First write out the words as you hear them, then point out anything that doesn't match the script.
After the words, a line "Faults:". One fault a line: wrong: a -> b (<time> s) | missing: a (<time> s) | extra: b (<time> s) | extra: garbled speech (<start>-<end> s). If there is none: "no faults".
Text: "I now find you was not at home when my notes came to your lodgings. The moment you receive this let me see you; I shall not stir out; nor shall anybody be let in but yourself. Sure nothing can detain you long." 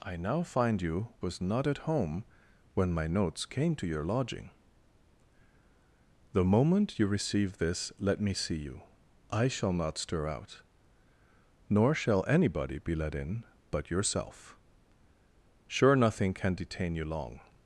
"I now find you was not at home when my notes came to your lodging. The moment you receive this let me see you; I shall not stir out; nor shall anybody be let in but yourself. Sure nothing can detain you long."
Faults:
wrong: lodgings -> lodging (4.0 s)